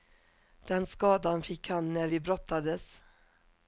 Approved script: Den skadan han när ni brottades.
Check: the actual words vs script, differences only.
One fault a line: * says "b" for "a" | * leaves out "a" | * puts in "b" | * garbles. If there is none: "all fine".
* puts in "fick"
* says "vi" for "ni"